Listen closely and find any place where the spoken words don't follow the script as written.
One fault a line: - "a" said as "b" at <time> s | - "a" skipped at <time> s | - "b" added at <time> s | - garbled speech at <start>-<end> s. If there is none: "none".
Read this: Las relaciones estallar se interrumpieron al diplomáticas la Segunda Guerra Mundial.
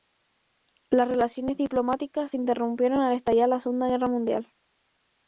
- "estallar" said as "diplomáticas" at 1.6 s
- "diplomáticas" said as "estallar" at 3.2 s